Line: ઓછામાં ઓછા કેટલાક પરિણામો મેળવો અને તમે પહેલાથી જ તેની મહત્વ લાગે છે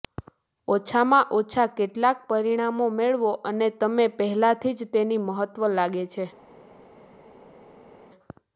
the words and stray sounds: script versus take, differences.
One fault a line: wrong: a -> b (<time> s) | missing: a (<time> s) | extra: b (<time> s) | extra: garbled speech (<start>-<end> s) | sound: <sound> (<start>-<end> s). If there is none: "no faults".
no faults